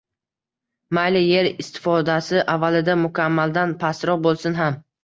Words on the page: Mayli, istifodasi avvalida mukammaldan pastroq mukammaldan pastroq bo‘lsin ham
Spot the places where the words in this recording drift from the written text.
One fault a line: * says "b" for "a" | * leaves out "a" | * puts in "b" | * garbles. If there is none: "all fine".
* puts in "yer"
* leaves out "mukammaldan pastroq"